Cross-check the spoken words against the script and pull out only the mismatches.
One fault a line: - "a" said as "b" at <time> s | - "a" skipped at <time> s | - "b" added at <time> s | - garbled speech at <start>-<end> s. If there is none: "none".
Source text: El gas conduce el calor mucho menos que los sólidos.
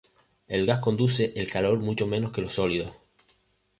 none